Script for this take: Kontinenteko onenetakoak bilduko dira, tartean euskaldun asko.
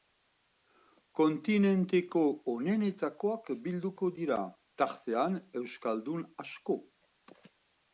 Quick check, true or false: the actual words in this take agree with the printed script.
true